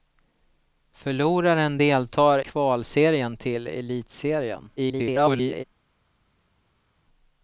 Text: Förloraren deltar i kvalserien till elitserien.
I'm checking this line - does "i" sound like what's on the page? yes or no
no